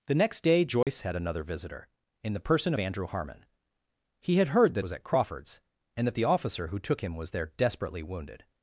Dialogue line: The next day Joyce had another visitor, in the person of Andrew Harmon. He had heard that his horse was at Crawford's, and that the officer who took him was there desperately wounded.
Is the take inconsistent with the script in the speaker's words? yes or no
yes